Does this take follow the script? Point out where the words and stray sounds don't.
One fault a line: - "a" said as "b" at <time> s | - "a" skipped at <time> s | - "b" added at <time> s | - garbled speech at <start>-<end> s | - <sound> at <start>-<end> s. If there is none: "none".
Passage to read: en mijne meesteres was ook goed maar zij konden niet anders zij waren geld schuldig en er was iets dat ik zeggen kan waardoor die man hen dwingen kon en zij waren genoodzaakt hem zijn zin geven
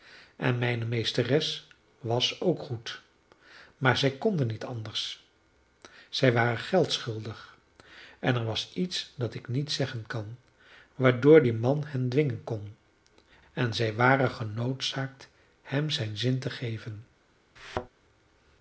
- "niet" added at 9.5 s
- "te" added at 16.4 s
- thud at 17.6-17.9 s